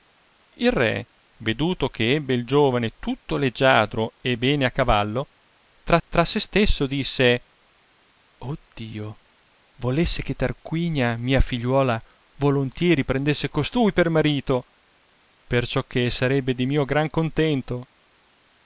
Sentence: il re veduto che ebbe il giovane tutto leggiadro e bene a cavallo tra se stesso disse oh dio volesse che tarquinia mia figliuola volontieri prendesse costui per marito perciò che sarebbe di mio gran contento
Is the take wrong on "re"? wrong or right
right